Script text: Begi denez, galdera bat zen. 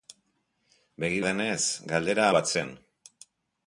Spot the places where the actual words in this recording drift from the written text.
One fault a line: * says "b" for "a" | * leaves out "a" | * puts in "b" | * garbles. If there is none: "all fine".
all fine